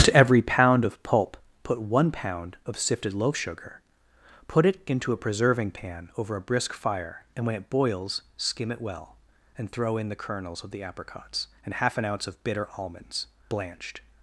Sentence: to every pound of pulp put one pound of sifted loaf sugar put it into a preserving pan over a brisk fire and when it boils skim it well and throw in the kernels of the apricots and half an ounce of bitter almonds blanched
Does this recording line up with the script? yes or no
yes